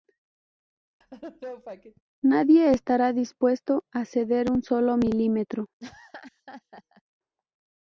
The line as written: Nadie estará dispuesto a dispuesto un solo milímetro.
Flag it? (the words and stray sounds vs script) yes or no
yes